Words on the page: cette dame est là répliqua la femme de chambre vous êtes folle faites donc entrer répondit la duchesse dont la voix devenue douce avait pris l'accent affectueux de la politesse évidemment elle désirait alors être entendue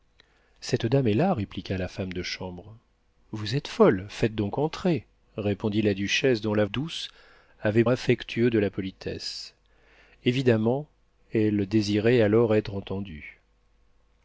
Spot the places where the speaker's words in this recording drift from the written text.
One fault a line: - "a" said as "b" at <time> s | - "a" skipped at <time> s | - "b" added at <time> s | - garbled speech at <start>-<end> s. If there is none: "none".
- "voix devenue" skipped at 6.7 s
- "pris l'accent" skipped at 7.8 s